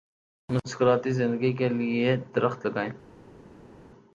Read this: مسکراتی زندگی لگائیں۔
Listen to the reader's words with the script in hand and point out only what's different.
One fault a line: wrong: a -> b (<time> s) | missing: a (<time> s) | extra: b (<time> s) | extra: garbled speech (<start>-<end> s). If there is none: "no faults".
extra: کے لیے درخت (1.5 s)